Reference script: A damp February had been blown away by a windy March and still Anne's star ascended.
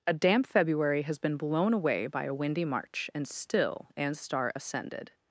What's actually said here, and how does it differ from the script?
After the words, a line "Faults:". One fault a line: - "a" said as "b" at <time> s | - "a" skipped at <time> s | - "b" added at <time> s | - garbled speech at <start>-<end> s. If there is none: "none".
A damp February has been blown away by a windy March and still Anne's star ascended.
Faults:
- "had" said as "has" at 1.0 s